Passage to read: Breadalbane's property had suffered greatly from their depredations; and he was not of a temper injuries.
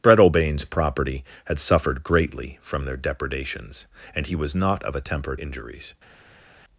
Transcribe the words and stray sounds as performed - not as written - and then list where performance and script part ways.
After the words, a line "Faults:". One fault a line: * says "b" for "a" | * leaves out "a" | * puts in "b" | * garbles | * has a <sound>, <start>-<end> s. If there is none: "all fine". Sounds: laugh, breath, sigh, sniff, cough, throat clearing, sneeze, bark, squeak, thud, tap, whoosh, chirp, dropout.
Breadalbane's property had suffered greatly from their depredations; and he was not of a temper injuries.
Faults:
all fine